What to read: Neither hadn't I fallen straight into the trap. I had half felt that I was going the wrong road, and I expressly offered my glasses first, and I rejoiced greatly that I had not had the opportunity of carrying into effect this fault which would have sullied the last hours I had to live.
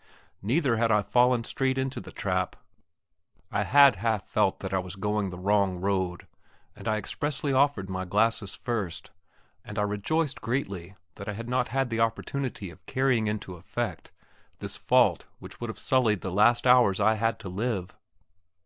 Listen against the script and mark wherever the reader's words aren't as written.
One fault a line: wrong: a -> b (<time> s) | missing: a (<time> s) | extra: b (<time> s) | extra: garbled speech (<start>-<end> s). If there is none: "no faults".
wrong: hadn't -> had (0.8 s)